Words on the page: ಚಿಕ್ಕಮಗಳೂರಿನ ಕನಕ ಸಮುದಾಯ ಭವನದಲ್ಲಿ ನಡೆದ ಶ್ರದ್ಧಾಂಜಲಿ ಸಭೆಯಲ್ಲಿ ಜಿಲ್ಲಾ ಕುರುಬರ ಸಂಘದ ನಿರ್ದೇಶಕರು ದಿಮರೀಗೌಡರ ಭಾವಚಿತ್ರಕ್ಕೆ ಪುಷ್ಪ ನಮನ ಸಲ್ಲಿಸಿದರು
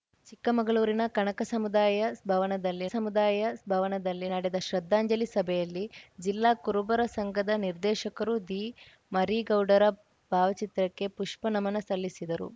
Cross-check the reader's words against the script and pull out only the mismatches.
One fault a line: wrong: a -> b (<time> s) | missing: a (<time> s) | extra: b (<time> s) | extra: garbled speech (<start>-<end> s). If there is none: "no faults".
extra: ಸಮುದಾಯ ಭವನದಲ್ಲಿ (2.9 s)